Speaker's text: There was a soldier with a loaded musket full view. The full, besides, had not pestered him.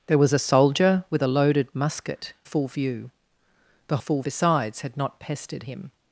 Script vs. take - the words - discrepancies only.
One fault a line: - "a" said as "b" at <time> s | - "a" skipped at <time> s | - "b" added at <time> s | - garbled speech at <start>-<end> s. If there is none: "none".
none